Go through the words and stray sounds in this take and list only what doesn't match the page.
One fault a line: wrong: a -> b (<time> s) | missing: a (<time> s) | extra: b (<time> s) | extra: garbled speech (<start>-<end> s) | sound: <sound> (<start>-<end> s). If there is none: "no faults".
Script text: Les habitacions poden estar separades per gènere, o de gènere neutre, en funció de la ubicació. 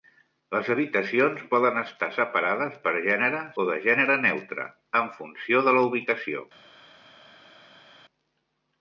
no faults